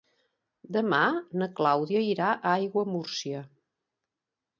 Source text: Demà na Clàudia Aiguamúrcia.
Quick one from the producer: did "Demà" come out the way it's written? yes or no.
yes